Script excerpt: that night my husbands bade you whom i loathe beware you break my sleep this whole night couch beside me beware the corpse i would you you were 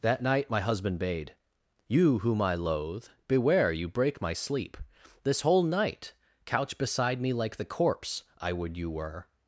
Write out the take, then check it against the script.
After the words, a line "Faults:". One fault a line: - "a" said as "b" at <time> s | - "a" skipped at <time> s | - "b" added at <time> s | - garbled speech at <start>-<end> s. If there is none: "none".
that night my husband bade you whom i loathe beware you break my sleep this whole night couch beside me like the corpse i would you were
Faults:
- "husbands" said as "husband" at 0.6 s
- "beware" said as "like" at 7.3 s
- "you" skipped at 8.9 s